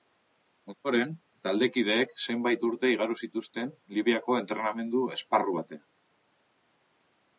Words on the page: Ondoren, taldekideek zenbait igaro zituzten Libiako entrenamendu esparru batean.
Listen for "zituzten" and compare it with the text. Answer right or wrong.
right